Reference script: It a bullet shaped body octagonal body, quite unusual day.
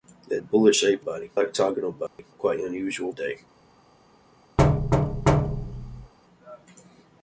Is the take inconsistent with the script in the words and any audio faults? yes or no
yes